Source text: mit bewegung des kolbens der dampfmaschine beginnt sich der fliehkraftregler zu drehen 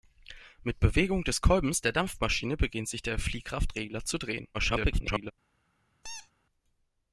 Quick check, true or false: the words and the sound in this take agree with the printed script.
false